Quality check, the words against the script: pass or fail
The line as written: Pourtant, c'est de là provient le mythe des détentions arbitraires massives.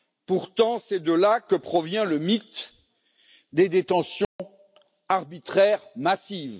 fail